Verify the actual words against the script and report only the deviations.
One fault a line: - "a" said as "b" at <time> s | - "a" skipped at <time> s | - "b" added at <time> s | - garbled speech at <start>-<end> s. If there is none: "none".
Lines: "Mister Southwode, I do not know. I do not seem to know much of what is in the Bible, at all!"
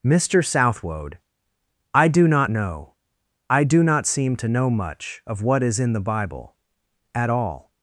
none